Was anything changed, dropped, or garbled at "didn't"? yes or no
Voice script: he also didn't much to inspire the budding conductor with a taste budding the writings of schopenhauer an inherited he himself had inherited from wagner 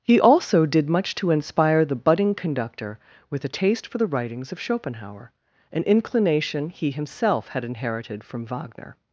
yes